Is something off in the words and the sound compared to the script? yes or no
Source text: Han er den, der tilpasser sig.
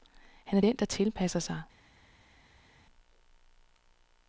no